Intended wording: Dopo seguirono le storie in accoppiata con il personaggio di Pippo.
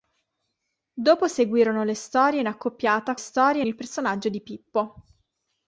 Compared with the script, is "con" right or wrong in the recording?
wrong